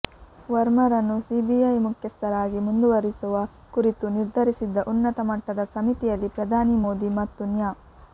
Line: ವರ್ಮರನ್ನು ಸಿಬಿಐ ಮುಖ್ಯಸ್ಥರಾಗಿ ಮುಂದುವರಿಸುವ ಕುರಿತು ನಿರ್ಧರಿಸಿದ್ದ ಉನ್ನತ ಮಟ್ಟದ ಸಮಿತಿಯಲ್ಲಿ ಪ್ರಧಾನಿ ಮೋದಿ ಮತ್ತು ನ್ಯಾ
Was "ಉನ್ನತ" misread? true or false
false